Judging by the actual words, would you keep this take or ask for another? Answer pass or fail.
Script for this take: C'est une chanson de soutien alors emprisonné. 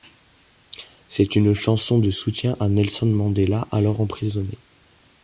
fail